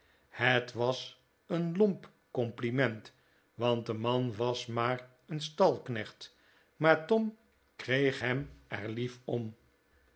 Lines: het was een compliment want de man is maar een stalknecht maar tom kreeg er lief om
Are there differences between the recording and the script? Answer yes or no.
yes